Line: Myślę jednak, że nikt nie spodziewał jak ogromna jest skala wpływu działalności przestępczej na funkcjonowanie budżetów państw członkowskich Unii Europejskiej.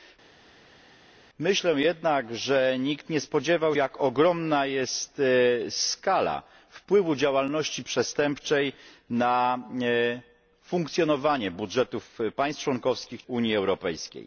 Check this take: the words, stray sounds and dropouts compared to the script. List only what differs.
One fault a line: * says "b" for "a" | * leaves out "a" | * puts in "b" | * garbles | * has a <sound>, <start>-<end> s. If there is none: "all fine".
all fine